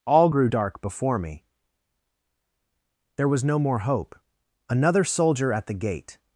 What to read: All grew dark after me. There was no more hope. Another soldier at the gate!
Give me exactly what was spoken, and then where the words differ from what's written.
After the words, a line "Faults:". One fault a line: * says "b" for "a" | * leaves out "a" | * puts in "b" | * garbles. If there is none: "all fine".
All grew dark before me. There was no more hope. Another soldier at the gate!
Faults:
* says "before" for "after"